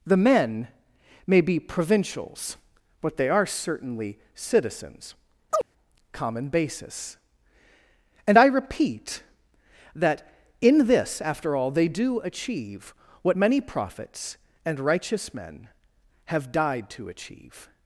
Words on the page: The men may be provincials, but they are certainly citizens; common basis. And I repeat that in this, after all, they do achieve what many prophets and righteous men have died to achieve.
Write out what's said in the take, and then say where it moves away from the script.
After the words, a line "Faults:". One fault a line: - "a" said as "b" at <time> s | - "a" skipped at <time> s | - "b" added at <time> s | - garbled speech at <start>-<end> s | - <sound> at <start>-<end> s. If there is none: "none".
The men may be provincials, but they are certainly citizens; common basis. And I repeat that in this, after all, they do achieve what many prophets and righteous men have died to achieve.
Faults:
- chirp at 5.5-5.7 s